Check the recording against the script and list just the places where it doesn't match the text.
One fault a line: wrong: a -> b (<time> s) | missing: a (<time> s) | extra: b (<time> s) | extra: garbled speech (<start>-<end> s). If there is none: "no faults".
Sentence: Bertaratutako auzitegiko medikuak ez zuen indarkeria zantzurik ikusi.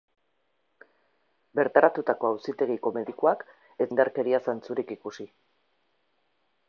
missing: zuen (3.9 s)